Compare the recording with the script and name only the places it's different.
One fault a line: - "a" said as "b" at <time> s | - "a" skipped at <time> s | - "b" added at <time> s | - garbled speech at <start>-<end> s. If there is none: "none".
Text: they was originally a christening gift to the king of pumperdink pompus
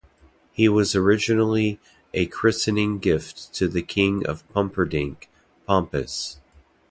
- "they" said as "he" at 0.5 s